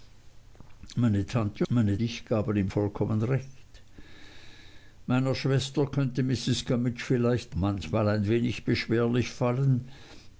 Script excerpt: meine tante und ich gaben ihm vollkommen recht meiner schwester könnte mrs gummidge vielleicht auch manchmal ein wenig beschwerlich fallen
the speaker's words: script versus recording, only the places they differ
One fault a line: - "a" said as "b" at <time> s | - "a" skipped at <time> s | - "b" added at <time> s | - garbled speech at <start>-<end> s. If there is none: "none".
- "und" said as "meine" at 1.7 s
- "auch" skipped at 7.6 s